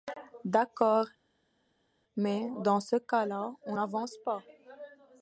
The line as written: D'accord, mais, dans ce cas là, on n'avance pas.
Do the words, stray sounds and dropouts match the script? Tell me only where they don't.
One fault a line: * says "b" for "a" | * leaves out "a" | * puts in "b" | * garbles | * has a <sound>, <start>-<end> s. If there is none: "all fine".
all fine